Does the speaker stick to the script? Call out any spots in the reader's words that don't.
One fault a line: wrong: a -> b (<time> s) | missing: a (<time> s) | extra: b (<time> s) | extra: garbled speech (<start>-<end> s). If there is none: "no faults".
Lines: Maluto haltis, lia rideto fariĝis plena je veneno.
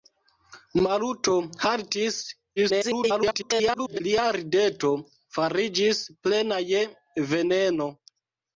extra: garbled speech (2.6-4.0 s)